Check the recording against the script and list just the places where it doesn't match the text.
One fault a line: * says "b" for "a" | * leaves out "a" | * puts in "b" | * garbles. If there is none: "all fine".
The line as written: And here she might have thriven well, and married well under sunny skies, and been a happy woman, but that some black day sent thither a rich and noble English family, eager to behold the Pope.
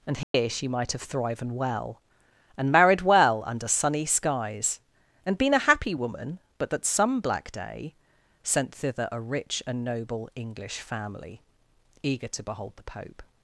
all fine